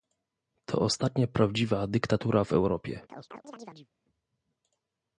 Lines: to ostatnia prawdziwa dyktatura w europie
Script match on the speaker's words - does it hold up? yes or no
yes